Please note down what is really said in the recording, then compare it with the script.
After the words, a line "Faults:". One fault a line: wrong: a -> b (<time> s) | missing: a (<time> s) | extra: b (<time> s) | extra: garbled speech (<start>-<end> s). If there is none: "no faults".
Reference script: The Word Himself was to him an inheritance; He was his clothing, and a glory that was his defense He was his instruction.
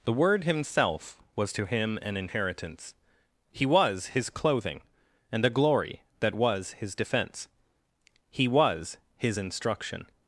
The Word Himself was to him an inheritance; He was his clothing, and a glory that was his defense He was his instruction.
Faults:
no faults